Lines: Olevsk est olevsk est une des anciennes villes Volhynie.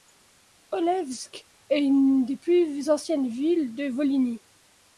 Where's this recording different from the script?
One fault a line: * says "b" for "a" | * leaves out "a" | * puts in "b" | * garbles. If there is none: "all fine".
* leaves out "olevsk est"
* puts in "plus"
* puts in "de"